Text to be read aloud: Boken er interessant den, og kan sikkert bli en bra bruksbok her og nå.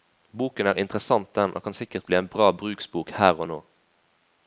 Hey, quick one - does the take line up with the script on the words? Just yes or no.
yes